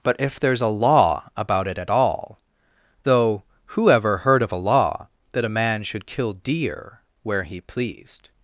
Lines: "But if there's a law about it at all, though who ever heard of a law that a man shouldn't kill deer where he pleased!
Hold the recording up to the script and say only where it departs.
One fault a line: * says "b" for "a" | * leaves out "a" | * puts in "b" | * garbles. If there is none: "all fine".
* says "should" for "shouldn't"